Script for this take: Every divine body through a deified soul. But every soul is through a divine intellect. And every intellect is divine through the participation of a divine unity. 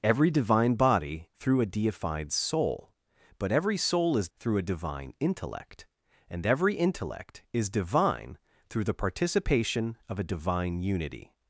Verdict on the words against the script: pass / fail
pass